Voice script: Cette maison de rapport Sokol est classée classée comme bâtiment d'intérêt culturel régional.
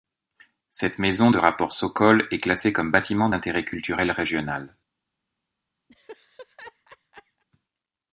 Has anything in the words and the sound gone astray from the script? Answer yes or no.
yes